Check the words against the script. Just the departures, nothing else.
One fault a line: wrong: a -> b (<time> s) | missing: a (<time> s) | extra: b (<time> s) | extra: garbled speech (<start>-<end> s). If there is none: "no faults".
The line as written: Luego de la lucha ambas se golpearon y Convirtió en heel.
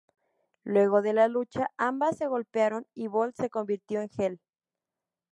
extra: Bolt se (3.1 s)